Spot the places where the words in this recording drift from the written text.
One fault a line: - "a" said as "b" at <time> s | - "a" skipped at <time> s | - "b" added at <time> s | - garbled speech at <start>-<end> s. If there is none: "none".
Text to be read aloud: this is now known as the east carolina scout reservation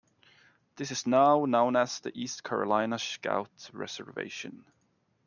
none